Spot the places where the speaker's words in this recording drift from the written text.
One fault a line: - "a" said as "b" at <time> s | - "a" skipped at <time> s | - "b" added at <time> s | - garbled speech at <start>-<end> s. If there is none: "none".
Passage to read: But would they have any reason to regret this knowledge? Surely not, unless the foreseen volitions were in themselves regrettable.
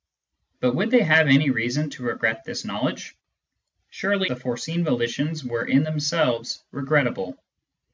- "not unless" skipped at 4.3 s